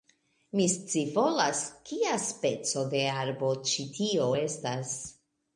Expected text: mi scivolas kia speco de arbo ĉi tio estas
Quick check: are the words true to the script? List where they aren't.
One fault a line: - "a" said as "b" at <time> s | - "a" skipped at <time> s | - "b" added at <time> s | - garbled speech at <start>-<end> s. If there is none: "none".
none